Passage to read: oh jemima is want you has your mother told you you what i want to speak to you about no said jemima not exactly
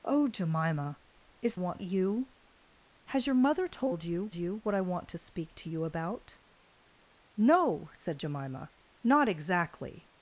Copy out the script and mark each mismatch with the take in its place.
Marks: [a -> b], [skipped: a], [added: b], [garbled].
oh jemima is want you has your mother told you you what i want to speak to you about no said jemima not exactly